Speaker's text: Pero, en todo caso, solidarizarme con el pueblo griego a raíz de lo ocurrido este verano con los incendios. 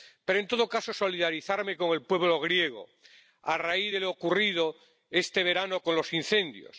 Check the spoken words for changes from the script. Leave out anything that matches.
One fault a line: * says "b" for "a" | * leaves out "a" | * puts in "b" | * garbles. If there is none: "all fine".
all fine